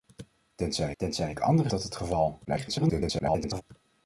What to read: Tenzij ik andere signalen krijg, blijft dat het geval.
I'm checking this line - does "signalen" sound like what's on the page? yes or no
no